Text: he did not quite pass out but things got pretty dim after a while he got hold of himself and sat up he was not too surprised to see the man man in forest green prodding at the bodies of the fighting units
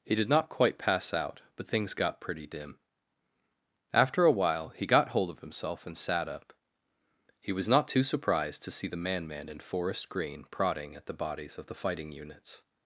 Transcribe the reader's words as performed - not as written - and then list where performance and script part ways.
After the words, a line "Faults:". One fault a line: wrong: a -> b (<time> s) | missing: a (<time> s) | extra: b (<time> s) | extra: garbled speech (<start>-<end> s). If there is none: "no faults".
he did not quite pass out but things got pretty dim after a while he got hold of himself and sat up he was not too surprised to see the man man in forest green prodding at the bodies of the fighting units
Faults:
no faults